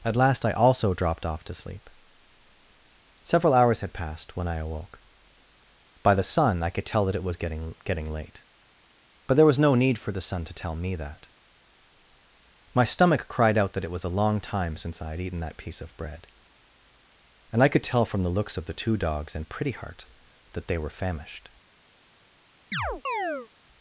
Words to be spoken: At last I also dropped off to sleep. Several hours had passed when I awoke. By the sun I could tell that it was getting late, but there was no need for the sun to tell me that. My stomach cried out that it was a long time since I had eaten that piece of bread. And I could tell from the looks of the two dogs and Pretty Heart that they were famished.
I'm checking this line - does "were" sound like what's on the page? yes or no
yes